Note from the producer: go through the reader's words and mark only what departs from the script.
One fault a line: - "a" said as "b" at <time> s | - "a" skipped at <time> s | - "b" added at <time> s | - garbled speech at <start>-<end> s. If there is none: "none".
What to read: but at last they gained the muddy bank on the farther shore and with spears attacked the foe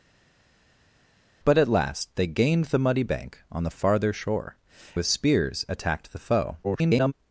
- "and" skipped at 4.5 s
- garbled speech at 6.6-7.1 s